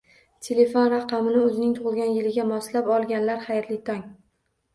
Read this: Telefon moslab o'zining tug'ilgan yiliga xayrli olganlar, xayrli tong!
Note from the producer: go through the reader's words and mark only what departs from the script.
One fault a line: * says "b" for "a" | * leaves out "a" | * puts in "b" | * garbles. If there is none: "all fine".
* says "raqamini" for "moslab"
* says "moslab" for "xayrli"